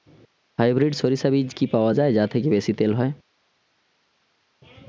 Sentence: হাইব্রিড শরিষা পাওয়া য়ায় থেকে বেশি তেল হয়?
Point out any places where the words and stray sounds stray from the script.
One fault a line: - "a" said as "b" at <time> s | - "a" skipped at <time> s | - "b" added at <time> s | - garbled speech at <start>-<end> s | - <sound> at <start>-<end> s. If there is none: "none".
- "বীজ কি" added at 1.3 s
- "যা" added at 2.1 s